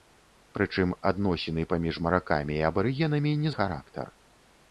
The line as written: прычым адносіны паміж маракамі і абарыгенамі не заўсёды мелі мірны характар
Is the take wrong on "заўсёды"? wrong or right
wrong